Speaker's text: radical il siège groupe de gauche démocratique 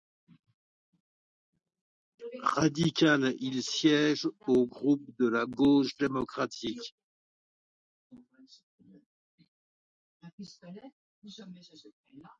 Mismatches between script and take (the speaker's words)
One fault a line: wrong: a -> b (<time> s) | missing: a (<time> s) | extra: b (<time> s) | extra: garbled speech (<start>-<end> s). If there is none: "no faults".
extra: au (4.5 s)
extra: la (5.3 s)